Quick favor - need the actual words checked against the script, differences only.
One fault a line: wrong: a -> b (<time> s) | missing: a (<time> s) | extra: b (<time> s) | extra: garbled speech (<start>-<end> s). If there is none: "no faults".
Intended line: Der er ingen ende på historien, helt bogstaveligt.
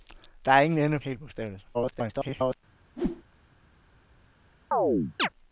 missing: på historien (1.0 s)
extra: garbled speech (1.7-2.6 s)